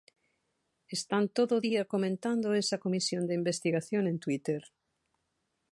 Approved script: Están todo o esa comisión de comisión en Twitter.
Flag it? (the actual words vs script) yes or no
yes